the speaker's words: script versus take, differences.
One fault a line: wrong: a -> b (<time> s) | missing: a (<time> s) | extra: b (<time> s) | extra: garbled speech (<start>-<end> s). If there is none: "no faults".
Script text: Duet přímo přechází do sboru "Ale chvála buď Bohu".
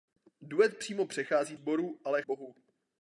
missing: do (1.6 s)
missing: chvála buď (2.2 s)